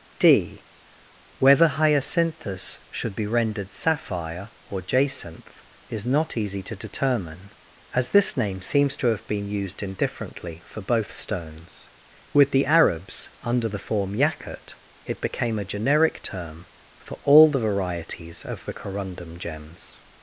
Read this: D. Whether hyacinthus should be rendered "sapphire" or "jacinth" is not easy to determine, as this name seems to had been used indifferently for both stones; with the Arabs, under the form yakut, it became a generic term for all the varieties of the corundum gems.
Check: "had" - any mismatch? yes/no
yes